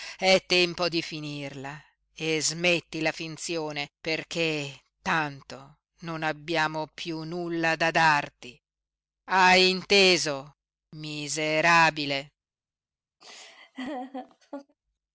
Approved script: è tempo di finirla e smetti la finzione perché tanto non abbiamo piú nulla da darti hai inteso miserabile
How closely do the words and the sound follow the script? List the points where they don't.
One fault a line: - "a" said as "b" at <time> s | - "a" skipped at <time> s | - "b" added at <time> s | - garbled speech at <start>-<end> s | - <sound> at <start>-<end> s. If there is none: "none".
- laugh at 13.2-14.8 s